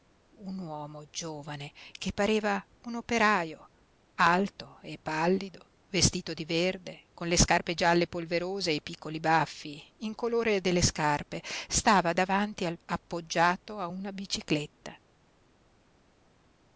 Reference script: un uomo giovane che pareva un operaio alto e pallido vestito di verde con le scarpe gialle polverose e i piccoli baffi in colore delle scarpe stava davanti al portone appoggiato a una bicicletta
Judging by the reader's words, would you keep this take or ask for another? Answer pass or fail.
fail